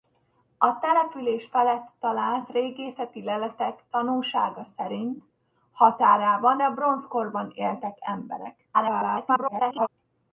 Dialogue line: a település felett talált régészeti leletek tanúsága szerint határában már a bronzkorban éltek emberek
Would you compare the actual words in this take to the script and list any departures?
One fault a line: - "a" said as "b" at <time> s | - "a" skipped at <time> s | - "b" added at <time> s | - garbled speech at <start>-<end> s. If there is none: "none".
- "már" skipped at 6.6 s
- garbled speech at 8.7-9.9 s